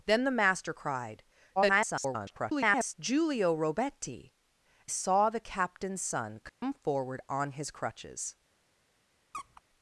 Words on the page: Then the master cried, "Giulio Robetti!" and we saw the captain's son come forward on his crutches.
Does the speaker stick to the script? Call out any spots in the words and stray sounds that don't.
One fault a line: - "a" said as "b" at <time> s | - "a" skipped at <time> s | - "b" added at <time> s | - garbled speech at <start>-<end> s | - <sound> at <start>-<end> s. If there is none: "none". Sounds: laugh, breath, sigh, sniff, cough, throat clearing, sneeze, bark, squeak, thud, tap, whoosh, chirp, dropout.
- garbled speech at 1.6-2.9 s
- "and we" skipped at 4.3 s
- dropout at 6.5-6.6 s
- squeak at 9.3-9.6 s